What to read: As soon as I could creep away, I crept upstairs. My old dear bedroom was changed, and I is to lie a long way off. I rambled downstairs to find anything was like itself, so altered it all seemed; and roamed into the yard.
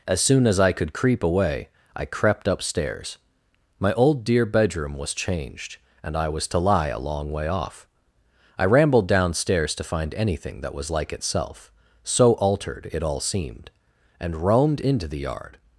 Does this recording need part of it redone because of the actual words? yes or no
yes